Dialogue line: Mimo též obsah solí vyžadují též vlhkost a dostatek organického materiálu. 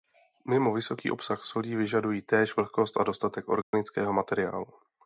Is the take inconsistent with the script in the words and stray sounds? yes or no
yes